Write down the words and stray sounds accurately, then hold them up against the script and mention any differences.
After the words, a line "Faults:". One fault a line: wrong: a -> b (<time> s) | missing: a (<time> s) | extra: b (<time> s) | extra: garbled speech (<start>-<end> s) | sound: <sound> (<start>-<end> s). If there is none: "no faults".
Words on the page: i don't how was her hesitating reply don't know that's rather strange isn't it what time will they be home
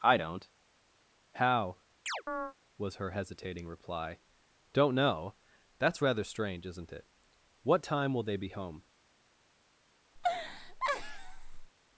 i don't how was her hesitating reply don't know that's rather strange isn't it what time will they be home
Faults:
sound: chirp (2.1-2.5 s)
sound: laugh (10.2-11.7 s)